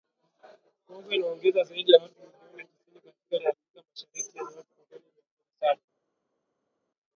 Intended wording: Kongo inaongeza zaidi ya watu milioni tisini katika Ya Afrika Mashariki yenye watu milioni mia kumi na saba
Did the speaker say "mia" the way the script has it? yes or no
yes